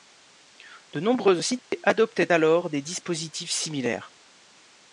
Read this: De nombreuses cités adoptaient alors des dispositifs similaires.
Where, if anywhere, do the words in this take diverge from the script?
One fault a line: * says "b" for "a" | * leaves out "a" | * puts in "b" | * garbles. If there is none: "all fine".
all fine